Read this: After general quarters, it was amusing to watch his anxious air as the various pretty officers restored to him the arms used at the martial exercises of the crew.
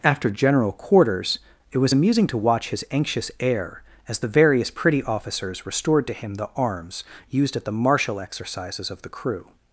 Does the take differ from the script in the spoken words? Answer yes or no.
no